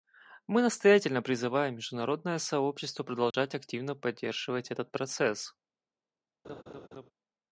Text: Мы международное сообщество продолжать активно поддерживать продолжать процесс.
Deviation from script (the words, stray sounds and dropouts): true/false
true